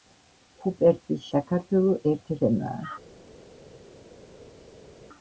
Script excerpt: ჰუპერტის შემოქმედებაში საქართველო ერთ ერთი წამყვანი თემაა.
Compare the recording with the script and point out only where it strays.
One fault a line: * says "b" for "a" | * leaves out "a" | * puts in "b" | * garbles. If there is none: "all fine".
* leaves out "შემოქმედებაში"
* leaves out "ერთი წამყვანი"